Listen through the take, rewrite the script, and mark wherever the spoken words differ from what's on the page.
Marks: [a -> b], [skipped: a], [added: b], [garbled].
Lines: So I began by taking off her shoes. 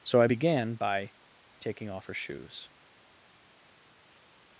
So I began by taking off her shoes.